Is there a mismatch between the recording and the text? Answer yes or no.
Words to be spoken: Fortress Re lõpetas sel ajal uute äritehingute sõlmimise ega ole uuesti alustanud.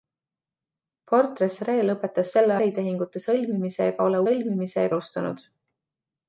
yes